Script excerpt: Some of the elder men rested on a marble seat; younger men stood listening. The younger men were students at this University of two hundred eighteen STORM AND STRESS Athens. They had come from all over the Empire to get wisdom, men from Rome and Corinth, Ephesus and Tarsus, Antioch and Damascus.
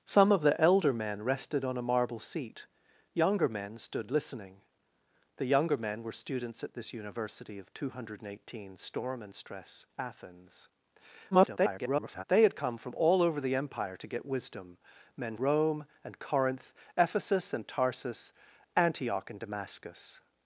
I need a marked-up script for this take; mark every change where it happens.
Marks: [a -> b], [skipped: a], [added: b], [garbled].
Some of the elder men rested on a marble seat; younger men stood listening. The younger men were students at this University of two hundred eighteen STORM AND STRESS Athens. [garbled] They had come from all over the Empire to get wisdom, men [skipped: from] Rome and Corinth, Ephesus and Tarsus, Antioch and Damascus.